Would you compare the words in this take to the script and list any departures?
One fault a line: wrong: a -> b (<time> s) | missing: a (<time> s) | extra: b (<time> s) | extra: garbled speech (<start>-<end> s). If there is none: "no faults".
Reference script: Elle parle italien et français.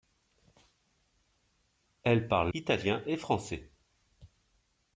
no faults